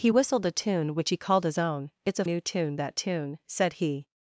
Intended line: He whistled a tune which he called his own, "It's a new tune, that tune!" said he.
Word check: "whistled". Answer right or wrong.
right